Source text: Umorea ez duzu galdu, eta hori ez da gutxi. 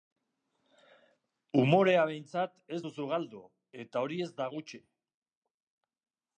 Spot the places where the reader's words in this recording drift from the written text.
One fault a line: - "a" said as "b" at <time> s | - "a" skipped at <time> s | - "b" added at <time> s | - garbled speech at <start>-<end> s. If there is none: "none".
- "behintzat" added at 2.1 s